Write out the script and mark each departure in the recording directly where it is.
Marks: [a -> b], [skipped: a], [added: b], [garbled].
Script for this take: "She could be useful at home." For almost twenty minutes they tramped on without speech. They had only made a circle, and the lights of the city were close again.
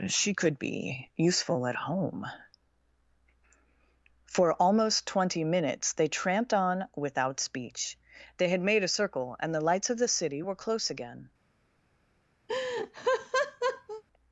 "She could be useful at home." For almost twenty minutes they tramped on without speech. They had [skipped: only] made a circle, and the lights of the city were close again.